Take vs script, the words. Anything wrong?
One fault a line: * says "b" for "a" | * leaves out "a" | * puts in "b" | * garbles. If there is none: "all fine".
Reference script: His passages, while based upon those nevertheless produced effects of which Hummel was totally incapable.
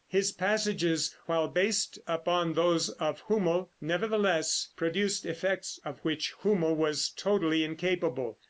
* puts in "of Hummel"